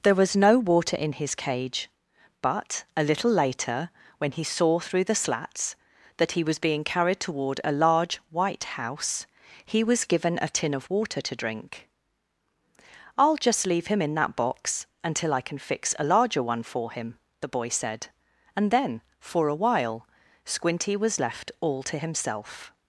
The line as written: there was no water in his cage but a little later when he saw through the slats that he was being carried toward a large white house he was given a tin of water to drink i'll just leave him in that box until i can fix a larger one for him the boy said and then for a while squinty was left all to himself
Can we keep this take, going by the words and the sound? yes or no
yes